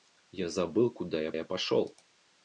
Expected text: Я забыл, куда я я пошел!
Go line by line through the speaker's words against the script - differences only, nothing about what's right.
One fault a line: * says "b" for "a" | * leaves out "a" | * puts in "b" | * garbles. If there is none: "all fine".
all fine